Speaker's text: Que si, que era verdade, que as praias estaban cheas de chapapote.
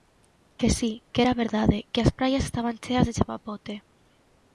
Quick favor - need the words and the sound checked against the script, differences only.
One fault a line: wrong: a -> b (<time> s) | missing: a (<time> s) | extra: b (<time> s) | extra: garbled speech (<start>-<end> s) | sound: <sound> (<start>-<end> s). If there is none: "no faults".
no faults